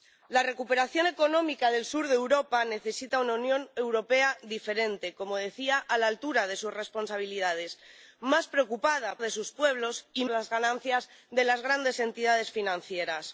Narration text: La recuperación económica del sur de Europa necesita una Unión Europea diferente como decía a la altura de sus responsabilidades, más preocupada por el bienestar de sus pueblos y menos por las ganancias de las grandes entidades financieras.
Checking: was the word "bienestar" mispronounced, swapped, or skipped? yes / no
yes